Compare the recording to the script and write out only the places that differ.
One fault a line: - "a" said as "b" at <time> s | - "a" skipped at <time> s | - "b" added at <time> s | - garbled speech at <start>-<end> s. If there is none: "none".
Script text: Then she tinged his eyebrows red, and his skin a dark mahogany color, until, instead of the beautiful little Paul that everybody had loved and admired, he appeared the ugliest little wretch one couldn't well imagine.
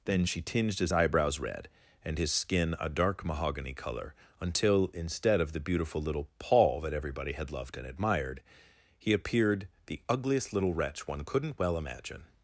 none